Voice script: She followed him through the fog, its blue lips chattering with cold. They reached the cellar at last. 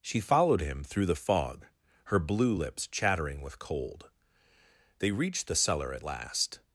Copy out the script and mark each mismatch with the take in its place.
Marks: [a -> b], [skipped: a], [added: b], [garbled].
She followed him through the fog, [its -> her] blue lips chattering with cold. They reached the cellar at last.